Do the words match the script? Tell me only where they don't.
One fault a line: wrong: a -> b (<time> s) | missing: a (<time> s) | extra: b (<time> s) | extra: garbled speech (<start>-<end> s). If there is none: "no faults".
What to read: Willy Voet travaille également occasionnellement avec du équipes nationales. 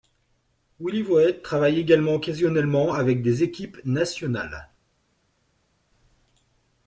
wrong: du -> des (3.2 s)